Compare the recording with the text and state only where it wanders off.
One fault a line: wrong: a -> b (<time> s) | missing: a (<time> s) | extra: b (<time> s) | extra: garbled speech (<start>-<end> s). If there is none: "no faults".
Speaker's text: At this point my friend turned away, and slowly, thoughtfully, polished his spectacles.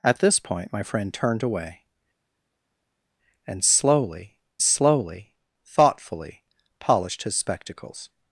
extra: slowly (4.6 s)